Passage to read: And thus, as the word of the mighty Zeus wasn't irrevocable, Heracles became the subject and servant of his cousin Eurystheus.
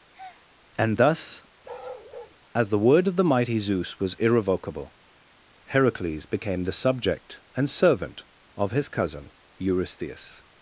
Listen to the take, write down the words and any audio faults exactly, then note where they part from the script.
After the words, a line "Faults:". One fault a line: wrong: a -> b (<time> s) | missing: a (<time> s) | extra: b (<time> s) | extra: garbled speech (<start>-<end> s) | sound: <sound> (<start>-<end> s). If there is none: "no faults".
And thus, as the word of the mighty Zeus was irrevocable, Heracles became the subject and servant of his cousin Eurystheus.
Faults:
sound: breath (0.1-0.5 s)
sound: bark (1.6-2.4 s)
wrong: wasn't -> was (4.0 s)